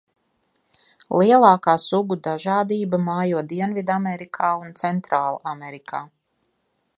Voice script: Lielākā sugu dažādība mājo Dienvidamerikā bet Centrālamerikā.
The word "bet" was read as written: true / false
false